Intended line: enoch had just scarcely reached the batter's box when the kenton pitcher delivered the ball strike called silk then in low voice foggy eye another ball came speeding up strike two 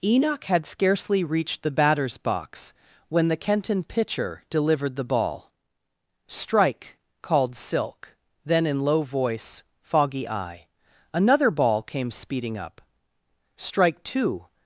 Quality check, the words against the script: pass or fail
fail